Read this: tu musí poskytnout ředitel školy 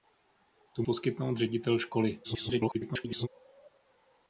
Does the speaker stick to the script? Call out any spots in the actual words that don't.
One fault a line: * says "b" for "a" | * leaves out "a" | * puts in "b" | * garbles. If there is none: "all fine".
* leaves out "musí"
* garbles